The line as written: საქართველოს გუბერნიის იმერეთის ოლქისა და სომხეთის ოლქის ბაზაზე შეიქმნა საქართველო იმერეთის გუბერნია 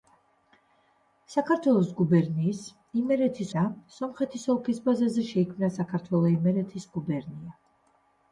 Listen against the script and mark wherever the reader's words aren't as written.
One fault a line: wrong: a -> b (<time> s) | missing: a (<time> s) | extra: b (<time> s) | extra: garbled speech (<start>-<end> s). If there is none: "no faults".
missing: ოლქისა (3.5 s)